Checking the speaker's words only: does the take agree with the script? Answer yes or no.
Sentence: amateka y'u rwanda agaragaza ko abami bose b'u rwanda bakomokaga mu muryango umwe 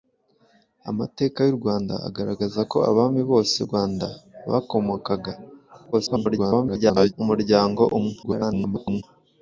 no